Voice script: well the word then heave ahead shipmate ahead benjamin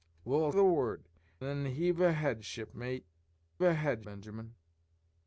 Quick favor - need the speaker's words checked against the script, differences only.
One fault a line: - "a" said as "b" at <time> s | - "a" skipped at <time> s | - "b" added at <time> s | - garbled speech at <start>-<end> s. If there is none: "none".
none